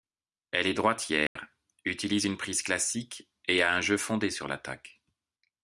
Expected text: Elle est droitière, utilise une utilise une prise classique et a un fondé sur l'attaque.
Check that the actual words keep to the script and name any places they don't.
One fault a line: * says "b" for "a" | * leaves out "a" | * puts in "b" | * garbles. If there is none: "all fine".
* leaves out "utilise une"
* puts in "jeu"